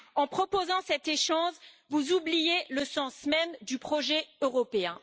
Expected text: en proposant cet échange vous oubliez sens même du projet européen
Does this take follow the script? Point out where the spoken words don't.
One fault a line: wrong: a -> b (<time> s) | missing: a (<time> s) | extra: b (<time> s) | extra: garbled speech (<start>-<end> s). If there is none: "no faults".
extra: le (2.7 s)